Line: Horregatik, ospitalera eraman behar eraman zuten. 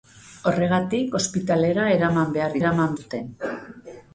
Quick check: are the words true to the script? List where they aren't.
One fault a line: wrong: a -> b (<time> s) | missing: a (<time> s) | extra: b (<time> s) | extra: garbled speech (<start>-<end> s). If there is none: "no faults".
no faults